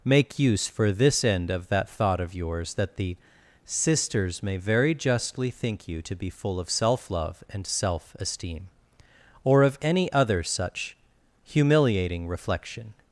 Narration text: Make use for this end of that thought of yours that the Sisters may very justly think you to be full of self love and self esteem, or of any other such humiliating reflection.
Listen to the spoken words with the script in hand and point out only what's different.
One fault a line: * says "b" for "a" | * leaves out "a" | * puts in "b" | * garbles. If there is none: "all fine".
all fine